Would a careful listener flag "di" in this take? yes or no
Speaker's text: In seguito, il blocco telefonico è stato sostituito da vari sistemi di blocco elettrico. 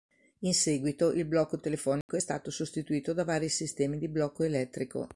no